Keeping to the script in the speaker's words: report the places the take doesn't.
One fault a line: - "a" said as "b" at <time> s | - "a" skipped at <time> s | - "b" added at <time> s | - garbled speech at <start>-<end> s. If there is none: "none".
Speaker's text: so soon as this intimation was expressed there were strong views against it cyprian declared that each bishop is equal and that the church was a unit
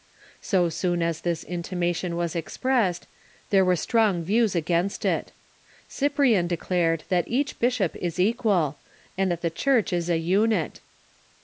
- "was" said as "is" at 9.9 s